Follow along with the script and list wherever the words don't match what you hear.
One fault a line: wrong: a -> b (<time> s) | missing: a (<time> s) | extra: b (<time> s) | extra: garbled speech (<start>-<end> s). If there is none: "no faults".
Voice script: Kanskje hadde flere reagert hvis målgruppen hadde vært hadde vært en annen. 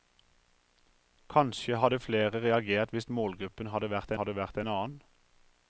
no faults